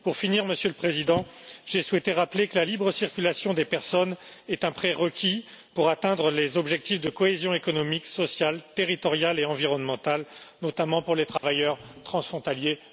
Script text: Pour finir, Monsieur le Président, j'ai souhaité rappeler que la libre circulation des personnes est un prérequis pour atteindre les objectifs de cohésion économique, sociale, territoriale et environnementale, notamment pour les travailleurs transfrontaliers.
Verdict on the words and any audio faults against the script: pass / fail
fail